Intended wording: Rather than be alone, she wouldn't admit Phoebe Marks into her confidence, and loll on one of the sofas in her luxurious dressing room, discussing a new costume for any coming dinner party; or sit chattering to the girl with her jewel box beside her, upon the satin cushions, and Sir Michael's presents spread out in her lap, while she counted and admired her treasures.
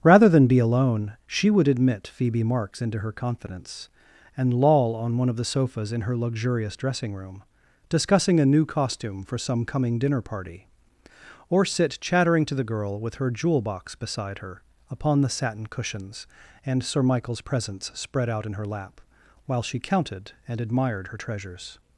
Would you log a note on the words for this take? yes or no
yes